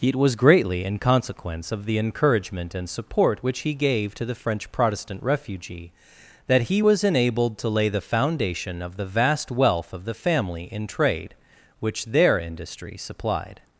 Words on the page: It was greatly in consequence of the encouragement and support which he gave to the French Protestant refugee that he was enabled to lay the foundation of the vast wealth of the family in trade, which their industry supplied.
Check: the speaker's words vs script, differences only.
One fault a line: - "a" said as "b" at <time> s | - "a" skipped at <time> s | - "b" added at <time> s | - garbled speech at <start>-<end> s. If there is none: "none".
none